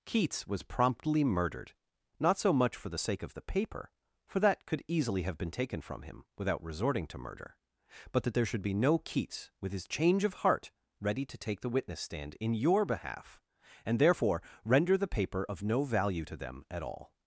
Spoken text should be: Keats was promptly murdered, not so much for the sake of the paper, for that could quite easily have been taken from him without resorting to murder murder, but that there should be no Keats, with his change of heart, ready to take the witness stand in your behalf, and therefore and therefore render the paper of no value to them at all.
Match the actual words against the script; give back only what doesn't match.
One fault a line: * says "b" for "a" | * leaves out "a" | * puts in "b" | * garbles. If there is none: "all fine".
* leaves out "quite"
* leaves out "murder"
* leaves out "and therefore"